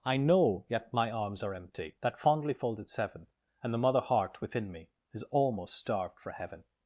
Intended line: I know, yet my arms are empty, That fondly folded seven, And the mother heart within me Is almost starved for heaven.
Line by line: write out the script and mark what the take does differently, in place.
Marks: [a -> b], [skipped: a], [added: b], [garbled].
I know, yet my arms are empty, That fondly folded seven, And the mother heart within me Is almost starved for heaven.